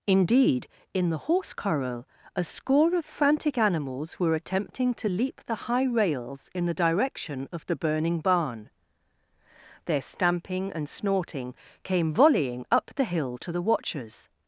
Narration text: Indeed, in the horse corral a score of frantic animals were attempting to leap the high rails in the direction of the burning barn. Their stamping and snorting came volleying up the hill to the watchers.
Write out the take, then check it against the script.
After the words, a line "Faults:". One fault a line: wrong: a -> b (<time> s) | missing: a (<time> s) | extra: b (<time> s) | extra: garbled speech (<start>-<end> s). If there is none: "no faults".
Indeed, in the horse corral a score of frantic animals were attempting to leap the high rails in the direction of the burning barn. Their stamping and snorting came volleying up the hill to the watchers.
Faults:
no faults